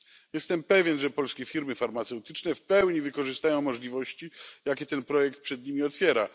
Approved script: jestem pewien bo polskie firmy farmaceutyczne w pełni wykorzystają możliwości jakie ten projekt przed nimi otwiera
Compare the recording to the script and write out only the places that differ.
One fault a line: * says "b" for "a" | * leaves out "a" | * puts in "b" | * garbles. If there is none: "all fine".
* says "że" for "bo"